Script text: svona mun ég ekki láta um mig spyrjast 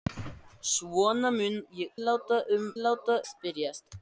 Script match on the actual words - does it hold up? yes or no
no